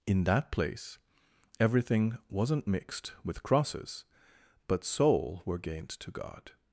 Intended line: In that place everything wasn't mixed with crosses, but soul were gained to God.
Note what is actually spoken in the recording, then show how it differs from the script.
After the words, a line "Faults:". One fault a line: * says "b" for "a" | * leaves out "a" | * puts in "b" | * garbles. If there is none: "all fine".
In that place everything wasn't mixed with crosses, but soul were gained to God.
Faults:
all fine